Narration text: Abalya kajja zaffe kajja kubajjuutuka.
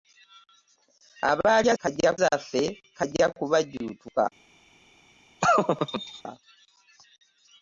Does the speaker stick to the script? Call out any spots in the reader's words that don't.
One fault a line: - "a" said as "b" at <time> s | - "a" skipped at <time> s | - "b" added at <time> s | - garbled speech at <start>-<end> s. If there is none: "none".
none